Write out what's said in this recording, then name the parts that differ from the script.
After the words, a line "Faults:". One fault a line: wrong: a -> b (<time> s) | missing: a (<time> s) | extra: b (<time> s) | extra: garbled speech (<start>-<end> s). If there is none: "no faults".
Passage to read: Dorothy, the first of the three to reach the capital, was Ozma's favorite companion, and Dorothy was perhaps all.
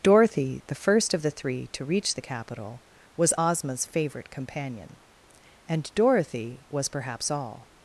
Dorothy, the first of the three to reach the capital, was Ozma's favorite companion, and Dorothy was perhaps all.
Faults:
no faults